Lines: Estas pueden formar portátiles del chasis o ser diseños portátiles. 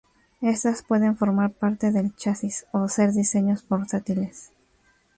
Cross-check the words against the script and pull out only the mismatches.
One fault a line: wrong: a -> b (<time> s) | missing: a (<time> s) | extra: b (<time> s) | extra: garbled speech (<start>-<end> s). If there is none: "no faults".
wrong: portátiles -> parte (1.5 s)